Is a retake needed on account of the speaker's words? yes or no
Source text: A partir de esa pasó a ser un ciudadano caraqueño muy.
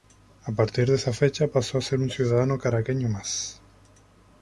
yes